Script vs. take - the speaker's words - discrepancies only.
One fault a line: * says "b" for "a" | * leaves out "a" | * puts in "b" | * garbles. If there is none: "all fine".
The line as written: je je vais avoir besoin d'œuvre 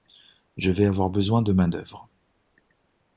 * leaves out "je"
* puts in "de main"